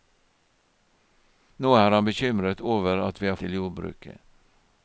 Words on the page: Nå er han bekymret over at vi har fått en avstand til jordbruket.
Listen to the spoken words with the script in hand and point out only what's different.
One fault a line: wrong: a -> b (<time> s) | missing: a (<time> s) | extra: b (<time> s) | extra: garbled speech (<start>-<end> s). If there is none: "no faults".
missing: fått en avstand (3.4 s)